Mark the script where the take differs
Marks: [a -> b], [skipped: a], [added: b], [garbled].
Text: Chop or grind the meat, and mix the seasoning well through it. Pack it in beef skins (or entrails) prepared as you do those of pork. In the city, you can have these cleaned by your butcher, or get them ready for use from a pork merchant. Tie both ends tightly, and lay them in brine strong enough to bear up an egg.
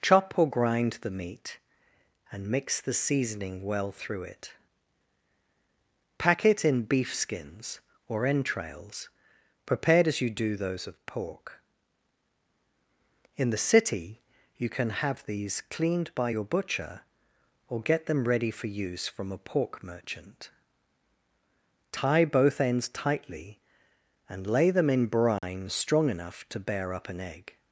Chop or grind the meat, and mix the seasoning well through it. Pack it in beef skins (or entrails) prepared as you do those of pork. In the city, you can have these cleaned by your butcher, or get them ready for use from a pork merchant. Tie both ends tightly, and lay them in brine strong enough to bear up an egg.